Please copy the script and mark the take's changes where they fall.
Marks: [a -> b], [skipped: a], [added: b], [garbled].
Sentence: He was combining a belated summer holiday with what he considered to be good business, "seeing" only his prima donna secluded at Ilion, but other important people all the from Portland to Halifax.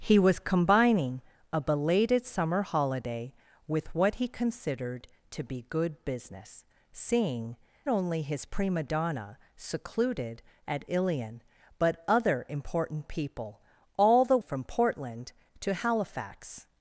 He was combining a belated summer holiday with what he considered to be good business, "seeing" only his prima donna secluded at Ilion, but other important people all the from Portland to Halifax.